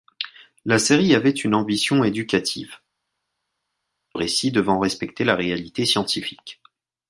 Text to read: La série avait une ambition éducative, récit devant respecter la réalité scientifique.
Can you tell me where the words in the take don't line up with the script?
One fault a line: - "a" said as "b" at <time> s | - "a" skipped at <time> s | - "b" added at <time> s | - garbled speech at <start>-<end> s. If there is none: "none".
none